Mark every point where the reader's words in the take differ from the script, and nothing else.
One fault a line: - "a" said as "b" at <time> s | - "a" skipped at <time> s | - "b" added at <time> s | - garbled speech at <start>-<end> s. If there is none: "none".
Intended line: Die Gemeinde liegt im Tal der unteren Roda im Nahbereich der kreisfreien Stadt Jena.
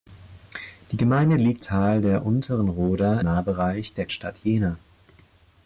- "im" skipped at 1.6 s
- "im" skipped at 3.2 s
- "kreisfreien" skipped at 4.1 s